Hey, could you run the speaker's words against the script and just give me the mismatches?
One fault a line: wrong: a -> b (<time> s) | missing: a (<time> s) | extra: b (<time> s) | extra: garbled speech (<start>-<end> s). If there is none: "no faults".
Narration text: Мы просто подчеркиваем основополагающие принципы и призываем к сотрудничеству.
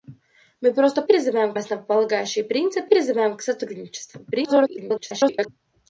wrong: подчеркиваем -> призываем (1.1 s)
missing: и (2.9 s)
extra: garbled speech (4.3-5.5 s)